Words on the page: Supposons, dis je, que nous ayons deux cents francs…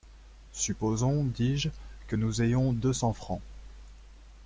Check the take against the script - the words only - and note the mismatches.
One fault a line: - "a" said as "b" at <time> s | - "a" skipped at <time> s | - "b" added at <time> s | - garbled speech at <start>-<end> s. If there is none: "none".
none